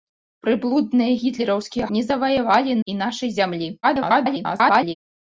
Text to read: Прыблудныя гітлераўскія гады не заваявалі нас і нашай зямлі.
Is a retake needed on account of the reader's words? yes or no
yes